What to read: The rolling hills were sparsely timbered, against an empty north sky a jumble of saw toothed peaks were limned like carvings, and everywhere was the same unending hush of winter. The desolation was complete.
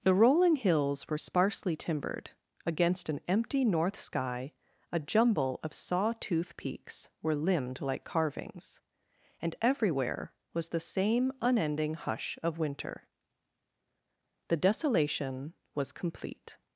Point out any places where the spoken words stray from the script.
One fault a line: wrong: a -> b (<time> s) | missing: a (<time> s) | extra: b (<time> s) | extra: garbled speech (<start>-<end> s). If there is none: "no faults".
wrong: toothed -> tooth (6.2 s)